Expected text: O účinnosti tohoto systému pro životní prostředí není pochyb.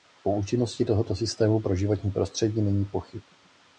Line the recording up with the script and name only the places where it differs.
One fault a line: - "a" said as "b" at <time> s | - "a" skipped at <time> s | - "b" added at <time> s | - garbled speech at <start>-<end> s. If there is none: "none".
none